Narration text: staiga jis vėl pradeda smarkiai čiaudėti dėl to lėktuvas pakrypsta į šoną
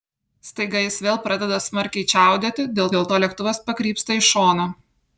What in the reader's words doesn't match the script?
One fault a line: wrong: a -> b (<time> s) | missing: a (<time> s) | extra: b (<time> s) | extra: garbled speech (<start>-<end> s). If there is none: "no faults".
extra: dėl (3.0 s)